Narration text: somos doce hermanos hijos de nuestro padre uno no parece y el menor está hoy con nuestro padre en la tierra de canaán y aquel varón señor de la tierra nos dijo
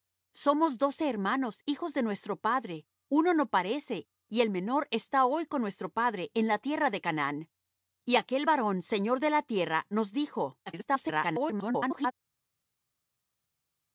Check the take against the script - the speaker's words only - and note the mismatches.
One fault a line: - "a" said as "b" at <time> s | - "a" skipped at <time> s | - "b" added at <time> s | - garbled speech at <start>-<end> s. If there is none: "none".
- garbled speech at 10.7-12.1 s